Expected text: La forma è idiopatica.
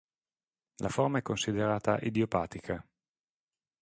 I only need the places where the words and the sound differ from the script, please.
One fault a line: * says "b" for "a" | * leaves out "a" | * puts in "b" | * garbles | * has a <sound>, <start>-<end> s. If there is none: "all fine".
* puts in "considerata"